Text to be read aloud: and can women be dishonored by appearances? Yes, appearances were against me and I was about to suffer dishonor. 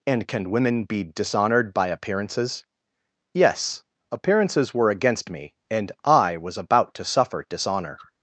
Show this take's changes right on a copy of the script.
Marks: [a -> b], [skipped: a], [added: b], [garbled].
and can women be dishonored by appearances? Yes, appearances were against me and I was about to suffer dishonor.